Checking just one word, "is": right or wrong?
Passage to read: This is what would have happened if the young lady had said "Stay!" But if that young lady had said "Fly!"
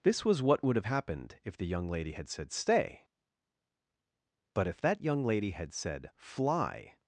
wrong